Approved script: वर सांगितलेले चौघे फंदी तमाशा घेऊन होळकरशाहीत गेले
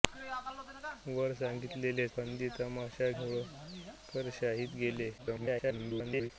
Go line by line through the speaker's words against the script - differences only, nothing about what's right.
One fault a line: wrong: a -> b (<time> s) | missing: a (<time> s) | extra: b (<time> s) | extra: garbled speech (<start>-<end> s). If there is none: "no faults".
missing: चौघे (2.1 s)
missing: घेऊन (3.1 s)
extra: garbled speech (5.2-6.3 s)